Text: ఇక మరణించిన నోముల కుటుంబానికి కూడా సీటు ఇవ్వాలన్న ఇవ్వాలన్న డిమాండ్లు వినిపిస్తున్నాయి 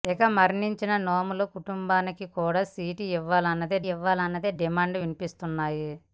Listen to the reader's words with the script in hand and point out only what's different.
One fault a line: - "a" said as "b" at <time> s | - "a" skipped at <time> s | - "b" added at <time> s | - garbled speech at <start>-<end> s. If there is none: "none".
none